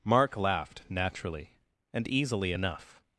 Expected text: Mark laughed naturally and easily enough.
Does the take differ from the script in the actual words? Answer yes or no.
no